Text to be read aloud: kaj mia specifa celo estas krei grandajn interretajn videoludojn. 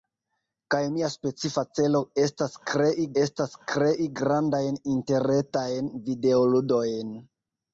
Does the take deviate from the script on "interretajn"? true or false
false